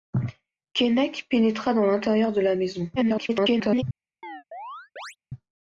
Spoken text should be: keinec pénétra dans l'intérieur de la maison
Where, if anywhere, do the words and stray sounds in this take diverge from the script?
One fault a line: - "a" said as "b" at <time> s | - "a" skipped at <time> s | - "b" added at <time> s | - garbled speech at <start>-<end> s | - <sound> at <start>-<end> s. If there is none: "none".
- garbled speech at 3.0-3.8 s
- chirp at 4.2-5.2 s